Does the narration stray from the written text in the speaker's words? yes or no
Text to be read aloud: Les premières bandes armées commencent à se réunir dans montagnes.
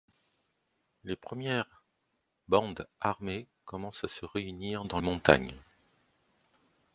no